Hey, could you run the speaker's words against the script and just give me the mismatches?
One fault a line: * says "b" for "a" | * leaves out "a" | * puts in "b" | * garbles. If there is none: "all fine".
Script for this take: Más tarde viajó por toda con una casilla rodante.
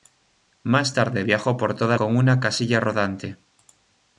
all fine